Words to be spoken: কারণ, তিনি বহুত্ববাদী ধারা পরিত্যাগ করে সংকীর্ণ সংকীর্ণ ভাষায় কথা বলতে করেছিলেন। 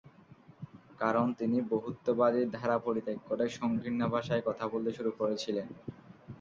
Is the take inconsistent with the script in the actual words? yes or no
yes